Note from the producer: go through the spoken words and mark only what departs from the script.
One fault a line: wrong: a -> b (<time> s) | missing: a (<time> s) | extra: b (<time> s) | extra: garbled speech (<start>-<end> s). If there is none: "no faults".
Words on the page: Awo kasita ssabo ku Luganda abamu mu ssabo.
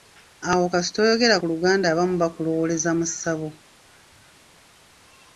wrong: ssabo -> oyogera (1.0 s)
extra: bakulowooleza (2.2 s)